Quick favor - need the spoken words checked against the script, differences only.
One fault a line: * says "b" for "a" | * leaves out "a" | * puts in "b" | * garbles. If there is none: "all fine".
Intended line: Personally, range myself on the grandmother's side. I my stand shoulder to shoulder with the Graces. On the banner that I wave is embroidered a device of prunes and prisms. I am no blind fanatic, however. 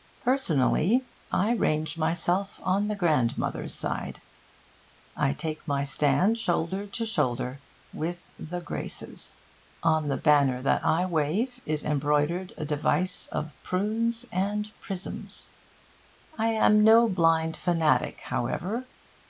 * puts in "I"
* puts in "take"